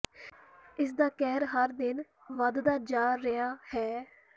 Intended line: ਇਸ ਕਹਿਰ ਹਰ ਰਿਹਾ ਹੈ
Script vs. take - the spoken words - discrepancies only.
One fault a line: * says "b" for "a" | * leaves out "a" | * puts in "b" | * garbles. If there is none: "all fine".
* puts in "ਦਾ"
* puts in "ਦਿਨ ਵਧਦਾ ਜਾ"